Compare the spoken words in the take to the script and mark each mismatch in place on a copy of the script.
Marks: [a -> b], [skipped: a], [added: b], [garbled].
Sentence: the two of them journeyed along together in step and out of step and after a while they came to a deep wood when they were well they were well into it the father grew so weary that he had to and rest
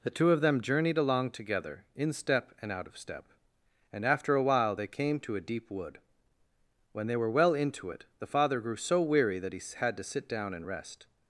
the two of them journeyed along together in step and out of step and after a while they came to a deep wood when they were well [skipped: they were well] into it the father grew so weary that he had to [added: sit down] and rest